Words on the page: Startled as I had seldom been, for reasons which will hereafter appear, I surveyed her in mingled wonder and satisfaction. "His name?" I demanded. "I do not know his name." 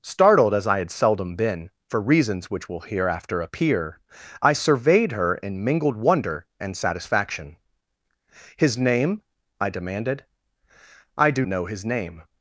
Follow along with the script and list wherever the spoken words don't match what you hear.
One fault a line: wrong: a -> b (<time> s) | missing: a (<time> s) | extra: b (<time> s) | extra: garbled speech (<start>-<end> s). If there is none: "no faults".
missing: not (11.4 s)